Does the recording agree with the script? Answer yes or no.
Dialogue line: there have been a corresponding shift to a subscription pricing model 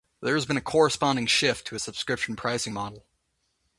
no